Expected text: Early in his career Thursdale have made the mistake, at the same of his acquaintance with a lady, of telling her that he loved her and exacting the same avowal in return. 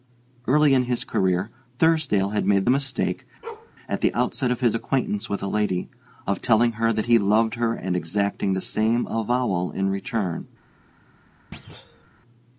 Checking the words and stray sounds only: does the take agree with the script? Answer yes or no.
no